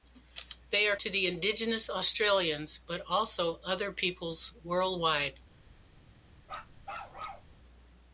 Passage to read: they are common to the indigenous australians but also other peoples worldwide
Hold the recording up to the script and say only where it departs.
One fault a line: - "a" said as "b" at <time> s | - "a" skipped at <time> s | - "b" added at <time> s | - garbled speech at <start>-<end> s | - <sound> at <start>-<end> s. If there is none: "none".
- "common" skipped at 0.9 s
- bark at 6.4-7.5 s